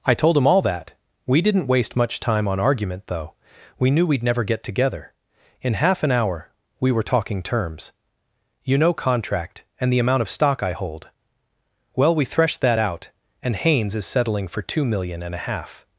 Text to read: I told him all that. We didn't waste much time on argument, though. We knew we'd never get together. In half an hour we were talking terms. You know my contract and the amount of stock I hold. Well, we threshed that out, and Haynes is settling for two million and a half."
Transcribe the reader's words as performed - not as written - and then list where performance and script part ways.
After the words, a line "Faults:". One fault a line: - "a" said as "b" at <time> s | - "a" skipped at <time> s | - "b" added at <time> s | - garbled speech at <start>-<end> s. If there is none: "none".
I told him all that. We didn't waste much time on argument, though. We knew we'd never get together. In half an hour we were talking terms. You know contract and the amount of stock I hold. Well, we threshed that out, and Haynes is settling for two million and a half."
Faults:
- "my" skipped at 8.9 s